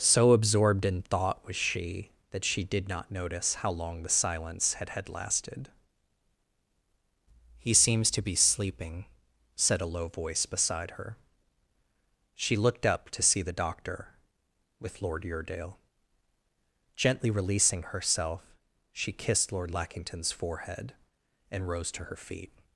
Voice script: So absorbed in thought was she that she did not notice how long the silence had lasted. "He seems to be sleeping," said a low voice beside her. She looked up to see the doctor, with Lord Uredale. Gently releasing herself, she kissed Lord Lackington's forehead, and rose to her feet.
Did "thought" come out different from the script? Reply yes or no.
no